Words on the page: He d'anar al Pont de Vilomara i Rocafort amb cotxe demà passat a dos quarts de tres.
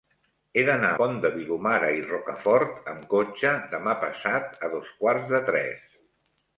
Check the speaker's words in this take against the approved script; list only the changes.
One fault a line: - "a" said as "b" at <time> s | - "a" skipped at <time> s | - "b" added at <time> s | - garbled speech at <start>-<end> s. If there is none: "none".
- "al" skipped at 0.9 s